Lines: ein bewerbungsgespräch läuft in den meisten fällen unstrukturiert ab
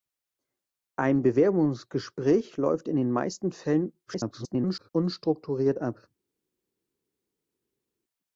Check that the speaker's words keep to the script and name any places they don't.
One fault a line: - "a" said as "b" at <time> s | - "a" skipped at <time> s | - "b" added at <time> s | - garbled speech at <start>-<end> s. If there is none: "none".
- garbled speech at 4.1-4.9 s